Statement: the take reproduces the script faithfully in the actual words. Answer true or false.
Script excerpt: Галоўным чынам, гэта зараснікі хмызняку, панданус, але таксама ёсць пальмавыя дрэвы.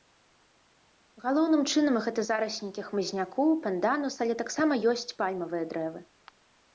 true